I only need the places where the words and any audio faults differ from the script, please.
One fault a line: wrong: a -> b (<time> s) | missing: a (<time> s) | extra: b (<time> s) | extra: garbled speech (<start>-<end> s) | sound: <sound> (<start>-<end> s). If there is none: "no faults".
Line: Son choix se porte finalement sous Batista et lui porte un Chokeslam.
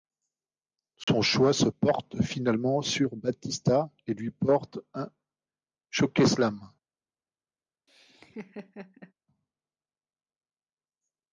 sound: dropout (1.0-1.1 s)
wrong: sous -> sur (2.8 s)
sound: laugh (7.9-9.1 s)